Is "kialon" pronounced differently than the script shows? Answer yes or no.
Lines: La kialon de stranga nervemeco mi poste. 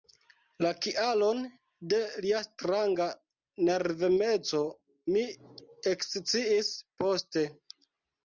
no